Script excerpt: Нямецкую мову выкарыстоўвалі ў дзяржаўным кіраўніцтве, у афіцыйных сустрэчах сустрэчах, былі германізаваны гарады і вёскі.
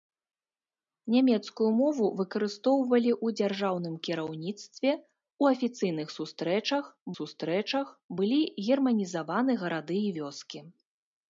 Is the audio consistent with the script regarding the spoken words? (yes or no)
yes